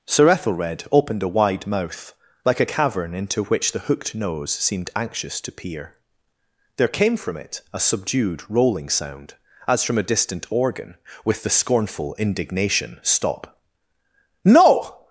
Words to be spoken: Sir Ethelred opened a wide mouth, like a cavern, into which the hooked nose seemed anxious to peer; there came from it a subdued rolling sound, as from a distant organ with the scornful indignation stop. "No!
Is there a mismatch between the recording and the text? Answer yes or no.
no